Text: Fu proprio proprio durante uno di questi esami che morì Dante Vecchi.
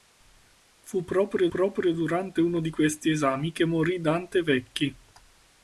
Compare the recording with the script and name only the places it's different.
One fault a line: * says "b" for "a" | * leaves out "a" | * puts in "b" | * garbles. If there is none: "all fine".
all fine